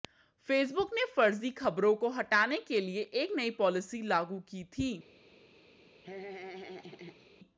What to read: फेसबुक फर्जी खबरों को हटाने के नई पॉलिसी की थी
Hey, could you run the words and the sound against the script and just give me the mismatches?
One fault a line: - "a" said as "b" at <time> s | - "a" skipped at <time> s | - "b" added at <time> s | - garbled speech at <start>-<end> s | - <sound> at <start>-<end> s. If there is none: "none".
- "ने" added at 0.9 s
- "लिए एक" added at 2.8 s
- "लागू" added at 4.0 s
- laugh at 6.0-7.3 s